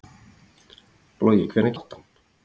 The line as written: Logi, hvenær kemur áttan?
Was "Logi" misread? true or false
false